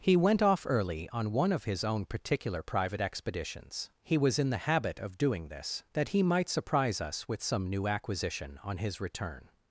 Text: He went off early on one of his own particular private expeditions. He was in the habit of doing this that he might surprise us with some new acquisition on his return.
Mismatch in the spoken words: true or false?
false